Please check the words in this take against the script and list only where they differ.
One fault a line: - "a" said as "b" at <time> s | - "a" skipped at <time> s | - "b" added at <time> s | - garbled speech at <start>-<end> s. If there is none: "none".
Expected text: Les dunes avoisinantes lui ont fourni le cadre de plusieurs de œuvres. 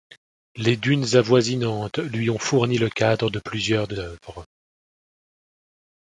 none